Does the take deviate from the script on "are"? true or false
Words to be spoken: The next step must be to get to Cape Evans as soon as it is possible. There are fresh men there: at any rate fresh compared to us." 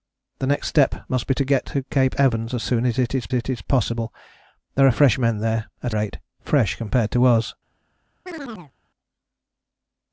false